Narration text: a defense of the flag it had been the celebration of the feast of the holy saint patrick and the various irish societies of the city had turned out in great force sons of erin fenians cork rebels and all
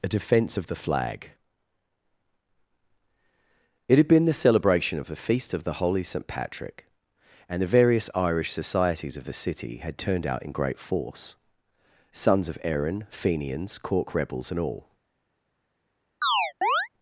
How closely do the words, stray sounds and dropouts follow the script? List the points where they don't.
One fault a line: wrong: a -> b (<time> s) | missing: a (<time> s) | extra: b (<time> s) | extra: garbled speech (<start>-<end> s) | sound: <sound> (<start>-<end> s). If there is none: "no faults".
sound: chirp (16.2-16.9 s)